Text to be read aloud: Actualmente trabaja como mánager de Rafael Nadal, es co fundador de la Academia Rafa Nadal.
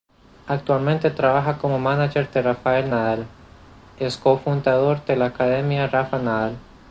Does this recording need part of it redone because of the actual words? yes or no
no